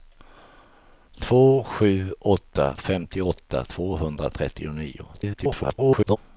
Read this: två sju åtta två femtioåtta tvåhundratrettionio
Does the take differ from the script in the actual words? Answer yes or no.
yes